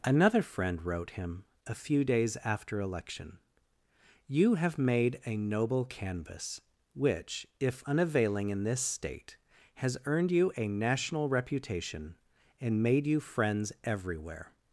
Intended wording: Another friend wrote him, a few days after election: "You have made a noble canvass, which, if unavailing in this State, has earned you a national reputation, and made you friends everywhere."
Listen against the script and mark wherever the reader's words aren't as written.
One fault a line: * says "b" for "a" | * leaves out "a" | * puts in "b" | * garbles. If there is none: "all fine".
all fine